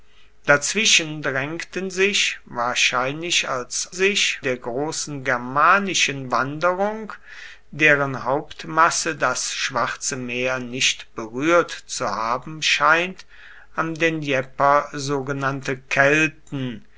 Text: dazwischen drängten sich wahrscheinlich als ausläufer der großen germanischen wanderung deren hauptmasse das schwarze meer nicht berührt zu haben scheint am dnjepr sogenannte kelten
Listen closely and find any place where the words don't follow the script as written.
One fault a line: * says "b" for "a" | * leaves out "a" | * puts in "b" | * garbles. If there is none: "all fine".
* says "sich" for "ausläufer"